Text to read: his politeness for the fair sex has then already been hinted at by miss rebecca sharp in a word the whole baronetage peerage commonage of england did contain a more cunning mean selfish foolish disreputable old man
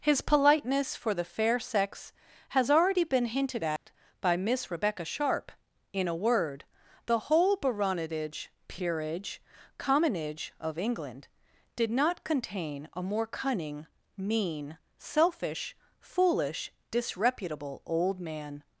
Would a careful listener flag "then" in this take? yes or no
yes